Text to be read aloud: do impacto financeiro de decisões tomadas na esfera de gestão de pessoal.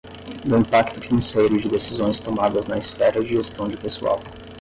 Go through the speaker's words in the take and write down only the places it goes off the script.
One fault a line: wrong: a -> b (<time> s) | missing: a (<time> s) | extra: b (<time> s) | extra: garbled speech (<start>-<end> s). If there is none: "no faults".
no faults